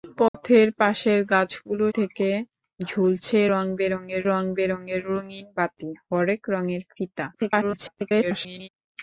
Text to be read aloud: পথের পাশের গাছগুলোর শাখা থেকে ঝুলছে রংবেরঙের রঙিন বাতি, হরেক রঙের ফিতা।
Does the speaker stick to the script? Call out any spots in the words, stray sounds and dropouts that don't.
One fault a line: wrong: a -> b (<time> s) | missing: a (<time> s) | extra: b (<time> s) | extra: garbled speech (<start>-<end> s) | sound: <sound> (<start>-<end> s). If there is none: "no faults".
sound: dropout (0.3-0.3 s)
missing: শাখা (1.9 s)
extra: রংবেরঙের (4.3 s)
extra: garbled speech (7.3-8.7 s)